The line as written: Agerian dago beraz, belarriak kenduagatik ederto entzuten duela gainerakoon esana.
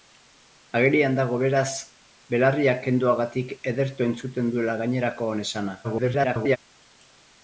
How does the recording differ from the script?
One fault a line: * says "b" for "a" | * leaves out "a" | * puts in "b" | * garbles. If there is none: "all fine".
* garbles